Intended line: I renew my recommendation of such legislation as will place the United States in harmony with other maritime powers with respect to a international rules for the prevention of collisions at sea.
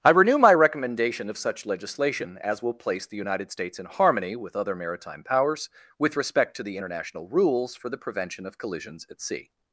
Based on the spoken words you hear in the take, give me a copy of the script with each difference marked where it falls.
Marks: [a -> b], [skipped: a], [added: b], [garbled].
I renew my recommendation of such legislation as will place the United States in harmony with other maritime powers with respect to [a -> the] international rules for the prevention of collisions at sea.